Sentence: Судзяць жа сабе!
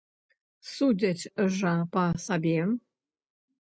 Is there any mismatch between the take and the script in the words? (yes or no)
yes